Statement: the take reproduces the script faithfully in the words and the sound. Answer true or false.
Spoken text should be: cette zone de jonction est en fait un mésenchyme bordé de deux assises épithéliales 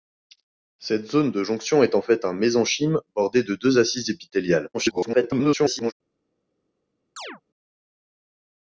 false